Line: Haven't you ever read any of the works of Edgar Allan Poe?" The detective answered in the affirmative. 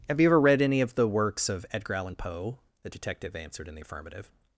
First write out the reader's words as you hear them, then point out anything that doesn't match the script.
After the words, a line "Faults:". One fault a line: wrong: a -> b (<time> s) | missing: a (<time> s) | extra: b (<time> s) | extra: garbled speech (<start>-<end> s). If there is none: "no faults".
Have you ever read any of the works of Edgar Allan Poe?" The detective answered in the affirmative.
Faults:
wrong: Haven't -> Have (0.1 s)